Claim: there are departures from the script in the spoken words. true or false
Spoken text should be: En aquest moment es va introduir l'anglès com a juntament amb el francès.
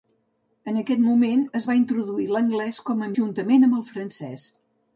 false